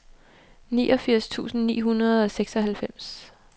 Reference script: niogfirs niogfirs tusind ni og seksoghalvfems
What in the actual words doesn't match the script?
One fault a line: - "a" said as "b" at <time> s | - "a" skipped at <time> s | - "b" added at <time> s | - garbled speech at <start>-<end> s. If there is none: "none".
- "niogfirs" skipped at 1.3 s
- "hundrede" added at 1.8 s